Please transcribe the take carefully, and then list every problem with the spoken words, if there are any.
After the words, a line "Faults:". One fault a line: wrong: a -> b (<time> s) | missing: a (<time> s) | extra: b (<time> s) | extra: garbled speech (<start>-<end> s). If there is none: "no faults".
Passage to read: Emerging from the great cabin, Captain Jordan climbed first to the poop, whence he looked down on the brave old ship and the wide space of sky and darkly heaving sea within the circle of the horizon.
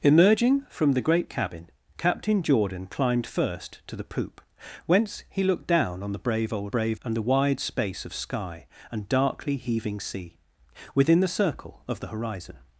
Emerging from the great cabin, Captain Jordan climbed first to the poop, whence he looked down on the brave old brave and the wide space of sky and darkly heaving sea within the circle of the horizon.
Faults:
wrong: ship -> brave (6.7 s)